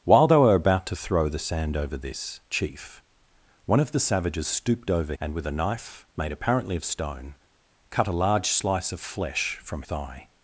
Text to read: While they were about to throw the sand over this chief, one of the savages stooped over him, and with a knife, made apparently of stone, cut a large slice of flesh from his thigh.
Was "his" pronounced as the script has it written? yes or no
no